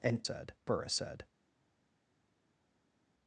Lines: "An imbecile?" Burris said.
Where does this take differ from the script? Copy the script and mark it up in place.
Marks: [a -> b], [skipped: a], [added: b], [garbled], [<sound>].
"An [imbecile?" -> said] Burris said.